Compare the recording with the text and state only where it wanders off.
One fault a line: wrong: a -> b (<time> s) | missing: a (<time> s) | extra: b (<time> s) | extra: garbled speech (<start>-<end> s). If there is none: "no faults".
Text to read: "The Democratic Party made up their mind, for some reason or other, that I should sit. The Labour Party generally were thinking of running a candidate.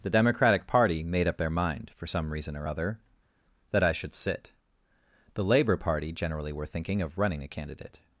no faults